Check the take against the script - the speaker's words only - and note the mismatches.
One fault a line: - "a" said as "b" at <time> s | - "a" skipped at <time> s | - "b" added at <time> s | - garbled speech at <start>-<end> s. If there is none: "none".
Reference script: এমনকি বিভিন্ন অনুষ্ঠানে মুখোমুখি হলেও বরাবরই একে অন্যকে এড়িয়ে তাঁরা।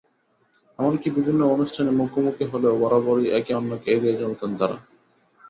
- "চলতেন" added at 4.2 s